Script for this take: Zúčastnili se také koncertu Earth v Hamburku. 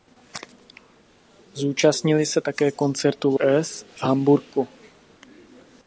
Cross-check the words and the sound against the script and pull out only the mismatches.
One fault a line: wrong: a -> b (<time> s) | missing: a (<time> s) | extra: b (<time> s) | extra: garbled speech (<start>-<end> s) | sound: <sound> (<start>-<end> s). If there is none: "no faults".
no faults